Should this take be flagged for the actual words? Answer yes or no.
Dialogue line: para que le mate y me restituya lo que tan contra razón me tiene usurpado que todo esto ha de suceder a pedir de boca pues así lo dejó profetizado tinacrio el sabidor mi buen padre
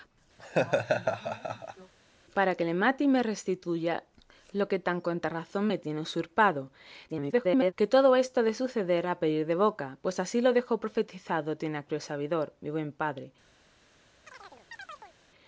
yes